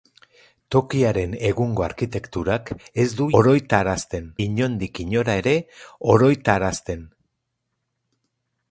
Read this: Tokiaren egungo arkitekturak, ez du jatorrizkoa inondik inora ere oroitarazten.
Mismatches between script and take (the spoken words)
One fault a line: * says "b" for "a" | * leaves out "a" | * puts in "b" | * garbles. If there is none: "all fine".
* says "oroitarazten" for "jatorrizkoa"